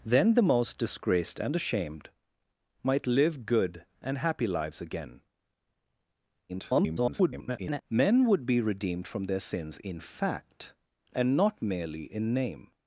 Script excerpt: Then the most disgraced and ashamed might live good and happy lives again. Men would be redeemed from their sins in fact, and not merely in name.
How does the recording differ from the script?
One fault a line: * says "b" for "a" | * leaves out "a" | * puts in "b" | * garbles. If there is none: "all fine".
* garbles